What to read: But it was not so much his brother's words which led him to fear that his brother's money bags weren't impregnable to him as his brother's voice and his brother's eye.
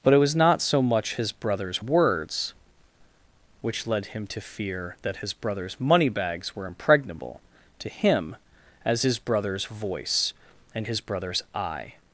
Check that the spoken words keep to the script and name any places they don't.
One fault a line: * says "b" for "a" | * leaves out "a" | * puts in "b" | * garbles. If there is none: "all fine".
* says "were" for "weren't"